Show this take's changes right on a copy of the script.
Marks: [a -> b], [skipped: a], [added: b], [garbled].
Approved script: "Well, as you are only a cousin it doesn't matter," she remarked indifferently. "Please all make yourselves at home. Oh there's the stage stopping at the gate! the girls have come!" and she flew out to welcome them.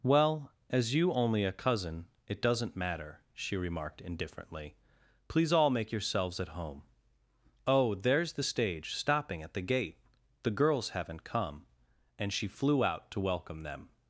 "Well, as you [skipped: are] only a cousin it doesn't matter," she remarked indifferently. "Please all make yourselves at home. Oh there's the stage stopping at the gate! the girls [have -> haven't] come!" and she flew out to welcome them.